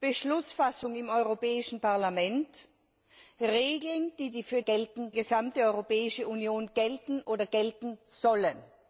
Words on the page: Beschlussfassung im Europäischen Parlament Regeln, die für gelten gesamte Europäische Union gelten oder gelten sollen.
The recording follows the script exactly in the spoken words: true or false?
true